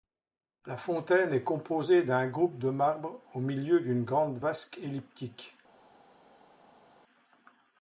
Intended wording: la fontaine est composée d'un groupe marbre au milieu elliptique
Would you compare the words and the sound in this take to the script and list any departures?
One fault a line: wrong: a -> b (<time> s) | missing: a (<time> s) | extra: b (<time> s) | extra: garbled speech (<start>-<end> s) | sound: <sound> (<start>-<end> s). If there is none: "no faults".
extra: de (2.6 s)
extra: d'une grande vasque (3.8 s)